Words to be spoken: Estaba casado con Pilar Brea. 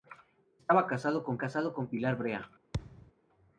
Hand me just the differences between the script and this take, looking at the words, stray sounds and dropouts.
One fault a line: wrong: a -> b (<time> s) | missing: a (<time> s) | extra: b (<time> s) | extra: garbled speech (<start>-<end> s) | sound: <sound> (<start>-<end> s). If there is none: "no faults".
extra: casado con (1.4 s)
sound: thud (2.7-3.1 s)